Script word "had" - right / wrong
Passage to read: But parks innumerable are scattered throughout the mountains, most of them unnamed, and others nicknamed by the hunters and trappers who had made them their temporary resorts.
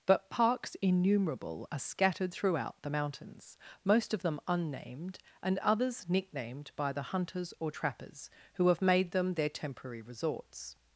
wrong